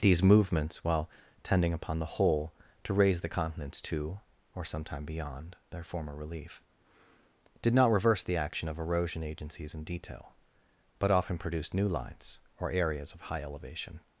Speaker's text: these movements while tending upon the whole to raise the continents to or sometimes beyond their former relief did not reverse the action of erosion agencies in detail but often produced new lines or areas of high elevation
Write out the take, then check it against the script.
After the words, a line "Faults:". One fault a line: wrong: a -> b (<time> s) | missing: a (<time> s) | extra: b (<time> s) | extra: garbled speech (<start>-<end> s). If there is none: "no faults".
these movements while tending upon the whole to raise the continents to or sometime beyond their former relief did not reverse the action of erosion agencies in detail but often produced new lines or areas of high elevation
Faults:
wrong: sometimes -> sometime (4.7 s)